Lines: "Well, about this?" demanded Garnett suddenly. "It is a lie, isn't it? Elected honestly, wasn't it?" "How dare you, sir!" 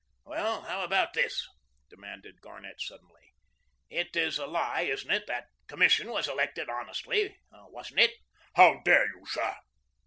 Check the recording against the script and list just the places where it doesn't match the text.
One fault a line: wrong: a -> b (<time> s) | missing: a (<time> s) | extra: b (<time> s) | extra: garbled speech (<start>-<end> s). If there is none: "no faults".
extra: how (0.6 s)
extra: That Commission was (5.3 s)